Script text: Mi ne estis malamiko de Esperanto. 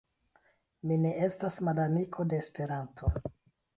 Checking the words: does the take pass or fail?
fail